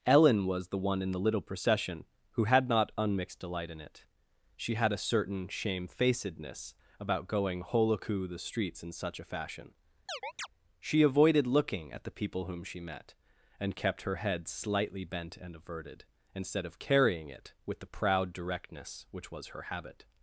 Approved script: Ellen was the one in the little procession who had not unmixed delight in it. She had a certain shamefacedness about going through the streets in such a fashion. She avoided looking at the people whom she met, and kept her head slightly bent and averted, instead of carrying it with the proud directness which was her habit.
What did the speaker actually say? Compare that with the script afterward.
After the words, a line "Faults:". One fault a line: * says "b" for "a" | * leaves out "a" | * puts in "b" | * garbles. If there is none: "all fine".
Ellen was the one in the little procession who had not unmixed delight in it. She had a certain shamefacedness about going holoku the streets in such a fashion. She avoided looking at the people whom she met, and kept her head slightly bent and averted, instead of carrying it with the proud directness which was her habit.
Faults:
* says "holoku" for "through"